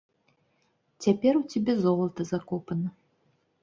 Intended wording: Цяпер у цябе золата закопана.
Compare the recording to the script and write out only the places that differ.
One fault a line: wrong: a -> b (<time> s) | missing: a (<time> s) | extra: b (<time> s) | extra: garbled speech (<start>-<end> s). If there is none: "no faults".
no faults